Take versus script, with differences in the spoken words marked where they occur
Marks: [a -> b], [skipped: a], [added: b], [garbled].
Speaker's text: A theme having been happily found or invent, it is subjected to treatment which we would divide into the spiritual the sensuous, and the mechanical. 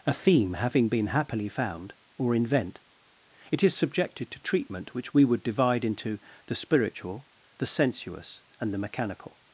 A theme having been happily found or invent, it is subjected to treatment which we would divide into the spiritual the sensuous, and the mechanical.